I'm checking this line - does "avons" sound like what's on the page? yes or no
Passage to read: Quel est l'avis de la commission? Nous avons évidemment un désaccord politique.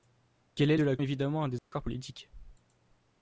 no